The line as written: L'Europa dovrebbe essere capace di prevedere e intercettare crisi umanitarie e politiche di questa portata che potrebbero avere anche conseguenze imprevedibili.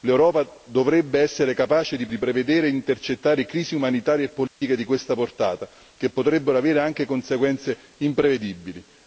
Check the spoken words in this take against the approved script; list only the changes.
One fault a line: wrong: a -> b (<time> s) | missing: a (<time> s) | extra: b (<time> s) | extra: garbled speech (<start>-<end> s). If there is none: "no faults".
extra: di (2.1 s)